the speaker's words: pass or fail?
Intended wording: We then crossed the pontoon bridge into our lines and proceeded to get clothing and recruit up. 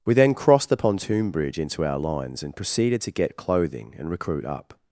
pass